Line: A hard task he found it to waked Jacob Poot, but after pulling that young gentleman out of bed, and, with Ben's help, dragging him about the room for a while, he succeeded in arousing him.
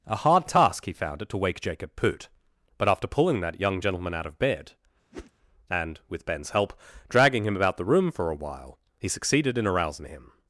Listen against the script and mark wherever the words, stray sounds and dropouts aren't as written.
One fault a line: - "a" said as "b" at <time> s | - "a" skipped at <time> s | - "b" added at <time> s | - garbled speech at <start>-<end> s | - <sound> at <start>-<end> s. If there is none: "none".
- "waked" said as "wake" at 1.4 s
- whoosh at 5.1-5.3 s